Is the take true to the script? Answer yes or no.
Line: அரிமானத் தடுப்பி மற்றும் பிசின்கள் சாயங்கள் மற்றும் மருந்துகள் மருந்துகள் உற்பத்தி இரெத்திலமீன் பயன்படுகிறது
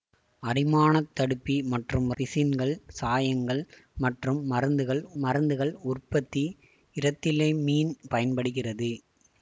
yes